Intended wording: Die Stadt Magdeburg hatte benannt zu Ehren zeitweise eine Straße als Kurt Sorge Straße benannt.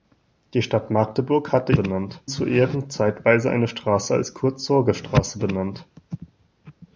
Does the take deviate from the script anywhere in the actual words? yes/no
no